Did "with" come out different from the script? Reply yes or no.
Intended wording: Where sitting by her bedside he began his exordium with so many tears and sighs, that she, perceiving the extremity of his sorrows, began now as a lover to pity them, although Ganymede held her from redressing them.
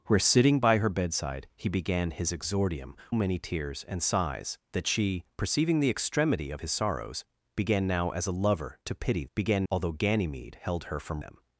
yes